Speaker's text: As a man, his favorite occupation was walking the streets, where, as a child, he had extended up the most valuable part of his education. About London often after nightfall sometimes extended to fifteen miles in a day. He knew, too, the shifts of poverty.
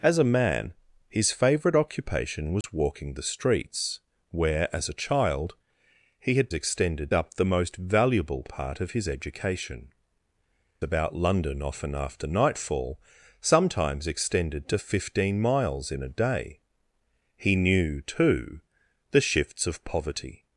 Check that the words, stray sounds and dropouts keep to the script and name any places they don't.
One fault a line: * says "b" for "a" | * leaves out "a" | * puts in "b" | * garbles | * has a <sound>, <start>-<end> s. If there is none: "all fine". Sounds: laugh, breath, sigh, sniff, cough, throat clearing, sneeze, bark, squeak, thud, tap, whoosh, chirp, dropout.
* has a dropout, 2.6-2.6 s